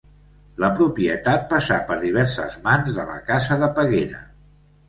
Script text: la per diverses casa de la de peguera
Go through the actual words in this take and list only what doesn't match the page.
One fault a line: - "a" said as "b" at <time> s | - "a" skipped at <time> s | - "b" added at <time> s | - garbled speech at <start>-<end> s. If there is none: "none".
- "propietat passà" added at 0.8 s
- "casa" said as "mans" at 2.6 s
- "casa" added at 3.3 s